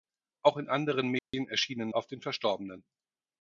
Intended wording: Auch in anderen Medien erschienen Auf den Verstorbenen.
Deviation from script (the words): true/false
false